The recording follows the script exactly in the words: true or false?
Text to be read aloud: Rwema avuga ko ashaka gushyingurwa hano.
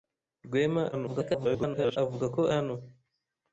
false